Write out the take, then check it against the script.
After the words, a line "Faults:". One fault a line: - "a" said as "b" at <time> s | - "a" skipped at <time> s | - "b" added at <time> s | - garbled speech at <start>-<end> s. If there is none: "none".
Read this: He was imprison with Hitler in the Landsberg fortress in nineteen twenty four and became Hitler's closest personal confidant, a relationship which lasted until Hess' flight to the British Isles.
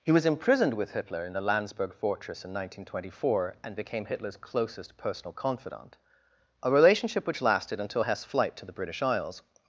He was imprisoned with Hitler in the Landsberg fortress in nineteen twenty four and became Hitler's closest personal confidant, a relationship which lasted until Hess' flight to the British Isles.
Faults:
- "imprison" said as "imprisoned" at 0.2 s